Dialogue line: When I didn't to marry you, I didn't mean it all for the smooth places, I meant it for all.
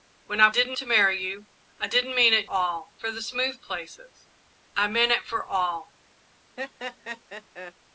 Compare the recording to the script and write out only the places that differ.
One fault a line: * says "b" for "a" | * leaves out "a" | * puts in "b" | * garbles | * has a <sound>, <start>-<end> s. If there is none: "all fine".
* has a laugh, 6.6-7.7 s